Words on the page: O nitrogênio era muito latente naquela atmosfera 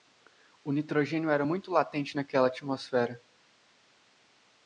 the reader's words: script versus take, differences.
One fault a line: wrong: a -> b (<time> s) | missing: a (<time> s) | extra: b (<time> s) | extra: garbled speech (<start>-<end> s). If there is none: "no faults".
no faults